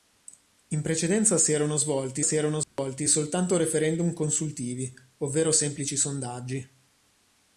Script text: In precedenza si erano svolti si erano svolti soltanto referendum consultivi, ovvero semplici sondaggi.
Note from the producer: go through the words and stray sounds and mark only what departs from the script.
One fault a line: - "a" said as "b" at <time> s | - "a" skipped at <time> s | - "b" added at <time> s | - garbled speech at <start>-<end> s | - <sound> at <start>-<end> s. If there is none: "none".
- dropout at 2.6-2.8 s